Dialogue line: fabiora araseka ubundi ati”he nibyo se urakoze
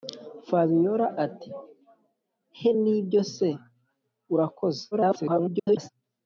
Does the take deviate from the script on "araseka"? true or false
true